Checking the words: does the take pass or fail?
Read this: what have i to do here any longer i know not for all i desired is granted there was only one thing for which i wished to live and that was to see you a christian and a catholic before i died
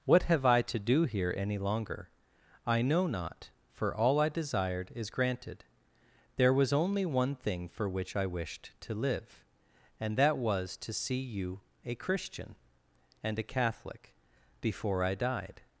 pass